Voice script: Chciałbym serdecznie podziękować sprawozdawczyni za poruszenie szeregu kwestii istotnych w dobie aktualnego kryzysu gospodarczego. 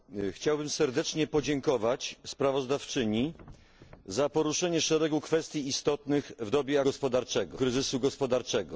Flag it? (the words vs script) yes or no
yes